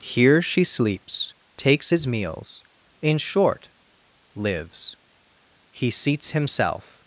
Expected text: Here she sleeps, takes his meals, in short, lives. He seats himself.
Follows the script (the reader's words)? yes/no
yes